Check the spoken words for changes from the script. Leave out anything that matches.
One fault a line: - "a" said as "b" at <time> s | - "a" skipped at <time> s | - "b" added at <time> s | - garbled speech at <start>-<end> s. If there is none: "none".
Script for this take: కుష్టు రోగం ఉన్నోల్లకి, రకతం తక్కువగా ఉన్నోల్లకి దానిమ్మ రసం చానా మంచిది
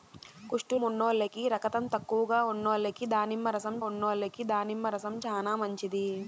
- "రోగం" skipped at 0.8 s
- "ఉన్నోల్లకి దానిమ్మ రసం" added at 3.8 s